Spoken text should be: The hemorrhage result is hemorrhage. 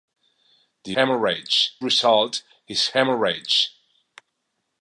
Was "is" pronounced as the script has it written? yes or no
yes